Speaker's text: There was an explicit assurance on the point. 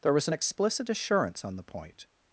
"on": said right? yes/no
yes